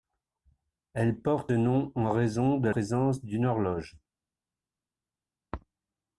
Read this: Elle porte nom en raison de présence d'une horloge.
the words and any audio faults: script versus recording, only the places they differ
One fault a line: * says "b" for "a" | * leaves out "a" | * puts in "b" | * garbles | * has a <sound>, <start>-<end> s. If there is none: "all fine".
all fine